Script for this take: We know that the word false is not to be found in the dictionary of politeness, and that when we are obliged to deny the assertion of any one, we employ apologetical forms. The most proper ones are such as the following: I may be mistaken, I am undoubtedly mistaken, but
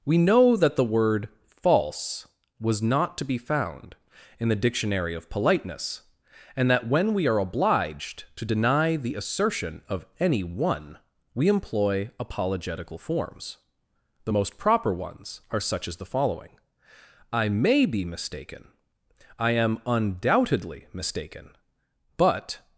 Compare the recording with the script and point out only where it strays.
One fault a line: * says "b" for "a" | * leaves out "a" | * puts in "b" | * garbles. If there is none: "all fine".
* says "was" for "is"